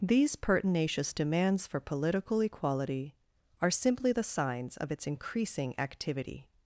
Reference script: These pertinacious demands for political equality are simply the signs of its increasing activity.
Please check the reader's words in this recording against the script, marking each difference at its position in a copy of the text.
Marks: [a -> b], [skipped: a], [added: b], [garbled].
These pertinacious demands for political equality are simply the signs of its increasing activity.